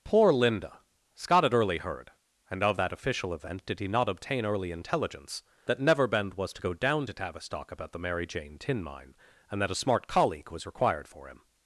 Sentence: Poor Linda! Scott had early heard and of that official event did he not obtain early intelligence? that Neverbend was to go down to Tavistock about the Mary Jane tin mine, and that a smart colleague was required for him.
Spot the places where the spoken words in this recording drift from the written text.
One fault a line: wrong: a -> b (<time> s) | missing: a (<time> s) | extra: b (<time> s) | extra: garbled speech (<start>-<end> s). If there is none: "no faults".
no faults